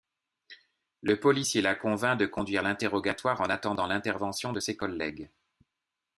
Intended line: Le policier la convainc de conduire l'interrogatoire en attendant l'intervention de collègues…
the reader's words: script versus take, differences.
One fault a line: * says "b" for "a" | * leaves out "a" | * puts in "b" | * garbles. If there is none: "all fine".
* puts in "ses"